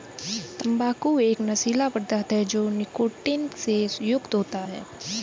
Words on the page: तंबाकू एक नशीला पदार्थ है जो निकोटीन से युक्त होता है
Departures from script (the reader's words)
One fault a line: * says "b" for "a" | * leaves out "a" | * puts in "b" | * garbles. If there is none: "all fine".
all fine